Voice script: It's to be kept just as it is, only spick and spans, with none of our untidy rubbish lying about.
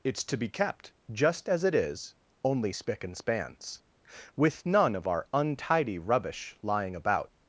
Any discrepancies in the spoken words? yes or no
no